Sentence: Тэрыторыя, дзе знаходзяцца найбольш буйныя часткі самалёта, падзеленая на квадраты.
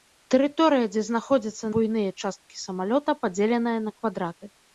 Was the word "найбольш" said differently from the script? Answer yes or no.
yes